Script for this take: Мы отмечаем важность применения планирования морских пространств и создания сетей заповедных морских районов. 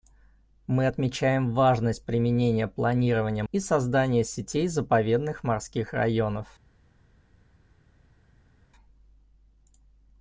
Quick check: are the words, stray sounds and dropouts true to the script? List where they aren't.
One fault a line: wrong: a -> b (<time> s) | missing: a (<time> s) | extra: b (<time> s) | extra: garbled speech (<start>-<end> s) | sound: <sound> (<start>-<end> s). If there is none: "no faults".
missing: морских пространств (3.4 s)